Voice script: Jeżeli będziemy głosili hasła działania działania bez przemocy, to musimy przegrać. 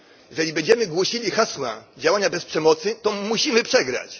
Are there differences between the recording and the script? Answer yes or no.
yes